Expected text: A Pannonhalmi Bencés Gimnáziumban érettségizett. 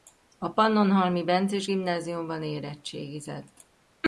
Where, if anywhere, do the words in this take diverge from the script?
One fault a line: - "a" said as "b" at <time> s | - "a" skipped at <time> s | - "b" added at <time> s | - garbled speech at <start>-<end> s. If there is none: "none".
none